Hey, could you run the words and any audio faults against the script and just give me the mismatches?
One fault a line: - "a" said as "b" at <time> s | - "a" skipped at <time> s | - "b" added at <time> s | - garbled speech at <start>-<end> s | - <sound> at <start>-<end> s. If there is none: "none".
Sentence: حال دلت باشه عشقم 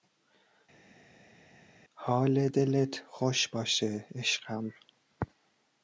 - "خوش" added at 3.1 s